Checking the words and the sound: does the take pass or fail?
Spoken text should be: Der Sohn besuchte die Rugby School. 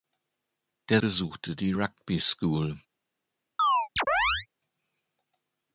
fail